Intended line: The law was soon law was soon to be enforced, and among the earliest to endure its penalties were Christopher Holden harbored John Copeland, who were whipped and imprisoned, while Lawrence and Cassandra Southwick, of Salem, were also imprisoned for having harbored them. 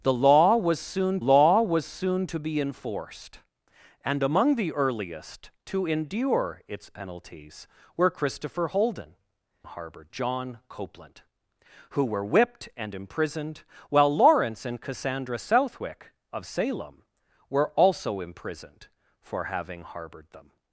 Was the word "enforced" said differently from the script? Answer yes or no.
no